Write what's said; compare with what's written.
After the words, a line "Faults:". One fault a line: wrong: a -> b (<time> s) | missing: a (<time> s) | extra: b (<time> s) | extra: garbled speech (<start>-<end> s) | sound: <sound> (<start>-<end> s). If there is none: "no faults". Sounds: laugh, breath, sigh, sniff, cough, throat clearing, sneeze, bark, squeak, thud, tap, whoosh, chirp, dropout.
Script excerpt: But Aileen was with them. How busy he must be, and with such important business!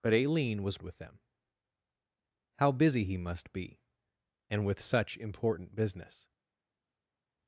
But Aileen was with them. How busy he must be, and with such important business!
Faults:
no faults